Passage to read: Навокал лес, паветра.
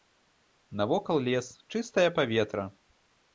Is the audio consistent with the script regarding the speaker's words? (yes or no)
no